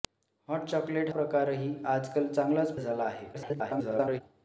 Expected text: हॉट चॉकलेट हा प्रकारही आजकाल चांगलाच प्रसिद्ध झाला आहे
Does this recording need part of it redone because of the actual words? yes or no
yes